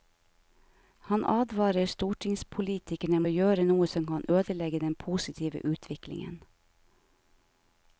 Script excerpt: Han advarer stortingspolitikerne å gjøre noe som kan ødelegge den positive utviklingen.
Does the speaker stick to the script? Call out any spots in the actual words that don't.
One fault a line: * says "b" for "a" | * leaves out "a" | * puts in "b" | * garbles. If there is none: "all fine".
all fine